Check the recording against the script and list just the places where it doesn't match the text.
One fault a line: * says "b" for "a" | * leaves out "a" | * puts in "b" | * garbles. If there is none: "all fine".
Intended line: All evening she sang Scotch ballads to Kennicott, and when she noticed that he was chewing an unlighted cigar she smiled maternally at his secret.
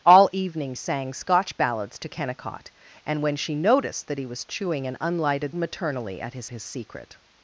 * leaves out "she"
* leaves out "cigar she smiled"
* puts in "his"